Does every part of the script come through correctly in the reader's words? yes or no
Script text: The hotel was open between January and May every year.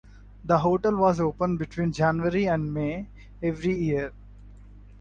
yes